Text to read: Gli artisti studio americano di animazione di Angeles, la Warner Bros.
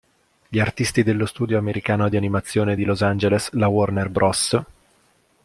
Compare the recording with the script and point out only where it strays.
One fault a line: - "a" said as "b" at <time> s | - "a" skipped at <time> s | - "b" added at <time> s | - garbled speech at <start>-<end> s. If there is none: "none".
- "dello" added at 1.0 s
- "Los" added at 2.8 s